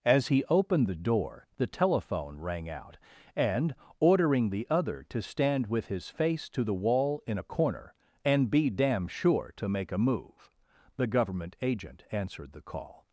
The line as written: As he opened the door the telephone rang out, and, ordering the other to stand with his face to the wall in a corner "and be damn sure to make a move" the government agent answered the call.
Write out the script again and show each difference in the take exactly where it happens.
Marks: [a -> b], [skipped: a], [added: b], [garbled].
As he opened the door the telephone rang out, and, ordering the other to stand with his face to the wall in a corner "and be damn sure to make a move" the government agent answered the call.